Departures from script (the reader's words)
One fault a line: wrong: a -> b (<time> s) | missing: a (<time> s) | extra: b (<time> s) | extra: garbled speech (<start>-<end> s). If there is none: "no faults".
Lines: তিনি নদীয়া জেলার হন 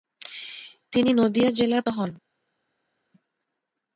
no faults